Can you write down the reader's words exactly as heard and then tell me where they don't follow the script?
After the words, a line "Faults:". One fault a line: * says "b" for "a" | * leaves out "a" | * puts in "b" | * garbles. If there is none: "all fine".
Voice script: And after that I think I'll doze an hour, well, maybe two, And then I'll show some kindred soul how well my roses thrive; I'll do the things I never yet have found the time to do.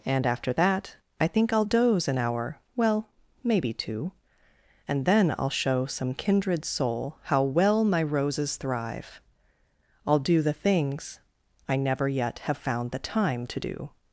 And after that I think I'll doze an hour, well, maybe two, And then I'll show some kindred soul how well my roses thrive; I'll do the things I never yet have found the time to do.
Faults:
all fine